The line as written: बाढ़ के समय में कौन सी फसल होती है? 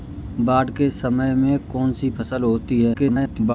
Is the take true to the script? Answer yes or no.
no